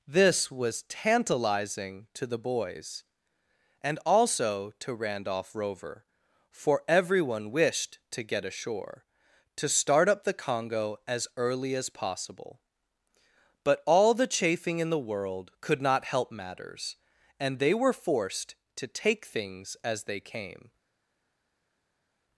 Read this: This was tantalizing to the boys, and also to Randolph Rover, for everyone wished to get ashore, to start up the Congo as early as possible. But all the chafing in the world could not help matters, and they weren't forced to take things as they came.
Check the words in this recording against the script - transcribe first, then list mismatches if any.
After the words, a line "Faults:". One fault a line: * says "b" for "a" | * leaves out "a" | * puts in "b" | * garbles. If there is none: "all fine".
This was tantalizing to the boys, and also to Randolph Rover, for everyone wished to get ashore, to start up the Congo as early as possible. But all the chafing in the world could not help matters, and they were forced to take things as they came.
Faults:
* says "were" for "weren't"